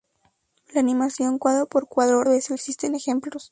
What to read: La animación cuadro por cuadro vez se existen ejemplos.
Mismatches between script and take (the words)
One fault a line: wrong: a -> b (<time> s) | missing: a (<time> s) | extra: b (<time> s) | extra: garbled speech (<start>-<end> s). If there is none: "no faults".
no faults